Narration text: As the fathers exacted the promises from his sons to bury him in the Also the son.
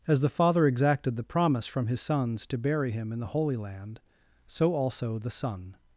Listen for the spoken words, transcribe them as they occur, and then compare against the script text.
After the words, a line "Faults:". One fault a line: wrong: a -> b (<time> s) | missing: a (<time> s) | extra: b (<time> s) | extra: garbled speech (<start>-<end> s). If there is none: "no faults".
As the father exacted the promise from his sons to bury him in the Holy Land, so also the son.
Faults:
wrong: fathers -> father (0.3 s)
wrong: promises -> promise (1.2 s)
extra: Holy Land so (3.3 s)